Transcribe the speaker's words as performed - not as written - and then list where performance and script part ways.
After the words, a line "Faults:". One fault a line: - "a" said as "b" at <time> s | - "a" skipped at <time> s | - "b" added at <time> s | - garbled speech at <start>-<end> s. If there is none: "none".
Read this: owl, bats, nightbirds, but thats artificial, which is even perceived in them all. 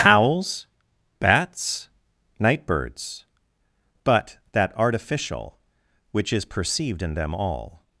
owls, bats, nightbirds, but that artificial, which is perceived in them all.
Faults:
- "owl" said as "owls" at 0.0 s
- "thats" said as "that" at 4.5 s
- "even" skipped at 6.5 s